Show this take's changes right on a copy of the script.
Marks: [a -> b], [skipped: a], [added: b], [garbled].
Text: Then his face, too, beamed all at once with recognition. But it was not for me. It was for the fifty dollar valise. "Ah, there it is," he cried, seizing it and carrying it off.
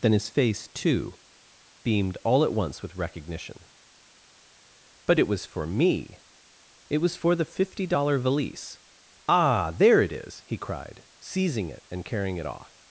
Then his face, too, beamed all at once with recognition. But it was [skipped: not] for me. It was for the fifty dollar valise. "Ah, there it is," he cried, seizing it and carrying it off.